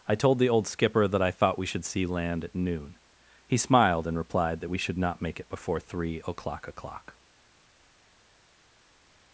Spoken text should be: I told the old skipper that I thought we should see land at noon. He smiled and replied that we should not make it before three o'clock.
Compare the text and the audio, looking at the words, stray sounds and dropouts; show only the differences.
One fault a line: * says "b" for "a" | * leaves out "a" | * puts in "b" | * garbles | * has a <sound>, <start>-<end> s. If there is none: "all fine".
* puts in "o'clock"